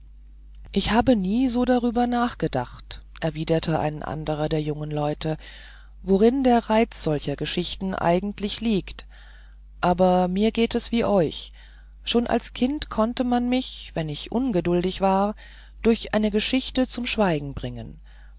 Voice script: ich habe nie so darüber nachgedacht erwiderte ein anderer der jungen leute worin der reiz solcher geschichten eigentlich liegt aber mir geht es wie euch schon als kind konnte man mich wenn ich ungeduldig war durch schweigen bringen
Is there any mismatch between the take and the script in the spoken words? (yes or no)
yes